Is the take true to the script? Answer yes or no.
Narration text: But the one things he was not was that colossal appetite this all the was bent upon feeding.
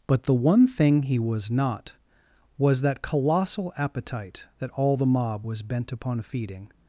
no